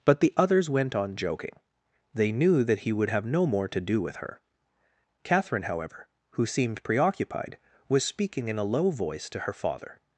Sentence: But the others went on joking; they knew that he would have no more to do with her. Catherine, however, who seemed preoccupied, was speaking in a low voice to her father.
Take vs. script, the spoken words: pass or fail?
pass